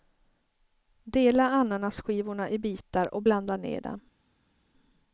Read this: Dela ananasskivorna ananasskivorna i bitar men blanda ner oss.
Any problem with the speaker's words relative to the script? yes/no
yes